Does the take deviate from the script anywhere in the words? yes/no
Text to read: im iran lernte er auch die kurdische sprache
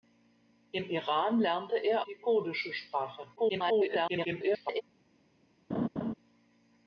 yes